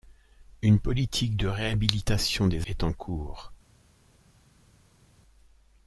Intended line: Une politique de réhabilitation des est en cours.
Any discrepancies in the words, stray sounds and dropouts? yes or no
no